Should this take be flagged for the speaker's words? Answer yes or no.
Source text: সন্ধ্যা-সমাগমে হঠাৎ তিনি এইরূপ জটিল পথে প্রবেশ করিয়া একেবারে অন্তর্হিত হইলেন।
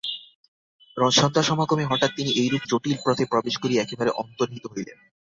no